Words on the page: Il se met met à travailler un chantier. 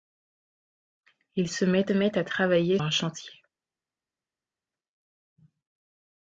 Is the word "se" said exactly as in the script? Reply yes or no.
yes